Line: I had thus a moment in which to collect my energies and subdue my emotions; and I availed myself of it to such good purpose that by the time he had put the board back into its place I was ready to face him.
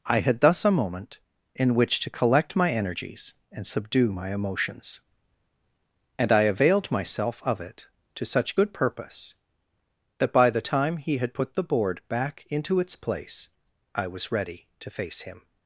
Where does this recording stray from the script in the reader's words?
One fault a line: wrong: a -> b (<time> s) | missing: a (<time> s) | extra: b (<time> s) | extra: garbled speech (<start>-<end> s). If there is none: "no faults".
no faults